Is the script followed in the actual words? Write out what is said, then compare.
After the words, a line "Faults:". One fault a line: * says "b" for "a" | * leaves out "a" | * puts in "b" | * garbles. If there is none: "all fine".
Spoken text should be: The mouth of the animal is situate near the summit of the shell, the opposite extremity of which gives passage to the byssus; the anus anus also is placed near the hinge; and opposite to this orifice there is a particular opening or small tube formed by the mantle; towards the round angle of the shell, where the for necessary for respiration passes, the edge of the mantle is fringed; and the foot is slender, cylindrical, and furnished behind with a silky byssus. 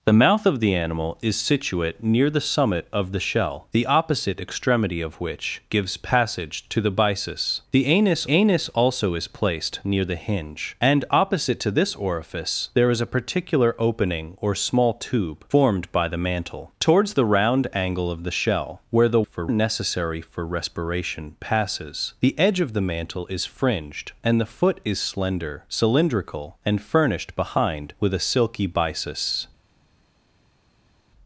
The mouth of the animal is situate near the summit of the shell, the opposite extremity of which gives passage to the byssus; the anus anus also is placed near the hinge; and opposite to this orifice there is a particular opening or small tube formed by the mantle; towards the round angle of the shell, where the for necessary for respiration passes, the edge of the mantle is fringed; and the foot is slender, cylindrical, and furnished behind with a silky byssus.
Faults:
all fine